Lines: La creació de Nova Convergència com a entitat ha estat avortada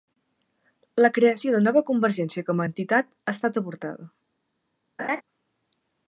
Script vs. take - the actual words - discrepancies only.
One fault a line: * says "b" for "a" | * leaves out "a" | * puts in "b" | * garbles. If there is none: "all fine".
all fine